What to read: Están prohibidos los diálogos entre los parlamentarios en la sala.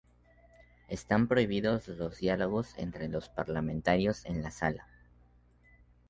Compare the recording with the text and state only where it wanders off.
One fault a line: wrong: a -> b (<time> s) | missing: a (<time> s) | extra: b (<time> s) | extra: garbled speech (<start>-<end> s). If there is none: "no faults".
no faults